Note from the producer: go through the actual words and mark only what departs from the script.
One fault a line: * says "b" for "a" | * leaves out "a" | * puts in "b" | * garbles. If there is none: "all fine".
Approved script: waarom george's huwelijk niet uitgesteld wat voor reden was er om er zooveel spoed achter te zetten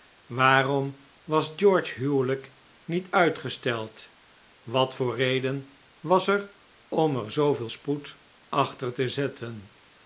* puts in "was"